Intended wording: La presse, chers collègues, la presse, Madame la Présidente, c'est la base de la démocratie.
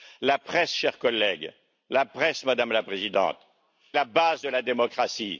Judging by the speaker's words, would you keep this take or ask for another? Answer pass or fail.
fail